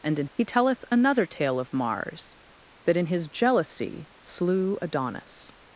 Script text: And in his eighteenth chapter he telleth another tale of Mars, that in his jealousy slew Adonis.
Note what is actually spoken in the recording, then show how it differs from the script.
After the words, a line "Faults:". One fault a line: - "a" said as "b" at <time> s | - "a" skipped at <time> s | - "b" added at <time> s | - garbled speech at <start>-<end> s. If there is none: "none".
And in he telleth another tale of Mars, that in his jealousy slew Adonis.
Faults:
- "his eighteenth chapter" skipped at 0.3 s